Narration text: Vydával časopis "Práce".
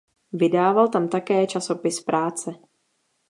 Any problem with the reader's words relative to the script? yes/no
yes